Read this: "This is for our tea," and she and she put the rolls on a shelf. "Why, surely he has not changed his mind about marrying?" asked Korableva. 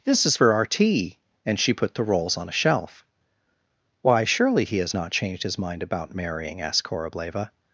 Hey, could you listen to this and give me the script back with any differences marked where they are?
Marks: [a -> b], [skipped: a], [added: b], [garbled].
"This is for our tea," and she [skipped: and she] put the rolls on a shelf. "Why, surely he has not changed his mind about marrying?" asked Korableva.